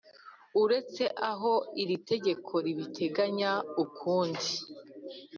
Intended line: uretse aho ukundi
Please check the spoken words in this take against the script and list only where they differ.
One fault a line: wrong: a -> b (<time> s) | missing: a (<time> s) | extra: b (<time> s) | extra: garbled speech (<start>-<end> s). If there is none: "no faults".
extra: iri tegeko ribiteganya (1.8 s)